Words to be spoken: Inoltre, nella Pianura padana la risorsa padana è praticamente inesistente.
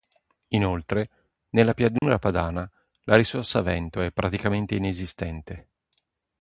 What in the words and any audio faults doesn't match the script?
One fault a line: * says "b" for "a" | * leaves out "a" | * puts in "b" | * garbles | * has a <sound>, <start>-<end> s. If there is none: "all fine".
* has a dropout, 2.0-2.0 s
* says "vento" for "padana"